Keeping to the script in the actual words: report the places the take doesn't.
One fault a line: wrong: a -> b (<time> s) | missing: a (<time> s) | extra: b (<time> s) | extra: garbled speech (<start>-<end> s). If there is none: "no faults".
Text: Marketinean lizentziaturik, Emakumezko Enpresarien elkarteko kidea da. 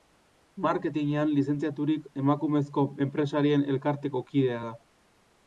no faults